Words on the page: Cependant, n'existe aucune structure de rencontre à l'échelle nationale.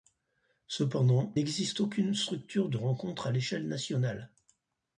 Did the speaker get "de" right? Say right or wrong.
right